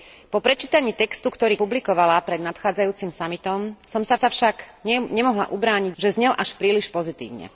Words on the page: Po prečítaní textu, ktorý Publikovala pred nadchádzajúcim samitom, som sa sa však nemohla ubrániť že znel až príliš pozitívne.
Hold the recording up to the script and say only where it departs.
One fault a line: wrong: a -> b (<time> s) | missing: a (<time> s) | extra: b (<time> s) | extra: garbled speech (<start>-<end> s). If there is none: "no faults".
no faults